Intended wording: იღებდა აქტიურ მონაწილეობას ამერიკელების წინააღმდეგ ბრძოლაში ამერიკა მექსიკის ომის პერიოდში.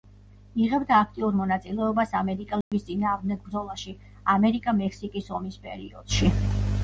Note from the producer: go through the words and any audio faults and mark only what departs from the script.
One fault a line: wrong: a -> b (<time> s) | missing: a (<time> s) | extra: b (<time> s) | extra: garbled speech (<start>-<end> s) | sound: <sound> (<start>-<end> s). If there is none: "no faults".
sound: dropout (2.6-2.7 s)